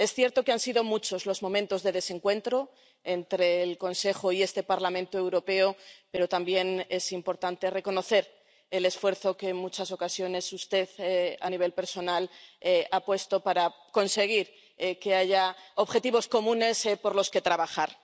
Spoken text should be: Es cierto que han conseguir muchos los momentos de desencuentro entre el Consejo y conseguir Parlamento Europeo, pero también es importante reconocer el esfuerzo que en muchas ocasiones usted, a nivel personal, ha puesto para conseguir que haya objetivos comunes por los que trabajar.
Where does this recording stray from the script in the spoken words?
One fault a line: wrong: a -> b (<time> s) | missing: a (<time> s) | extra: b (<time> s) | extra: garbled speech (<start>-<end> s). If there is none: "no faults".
wrong: conseguir -> sido (0.6 s)
wrong: conseguir -> este (4.4 s)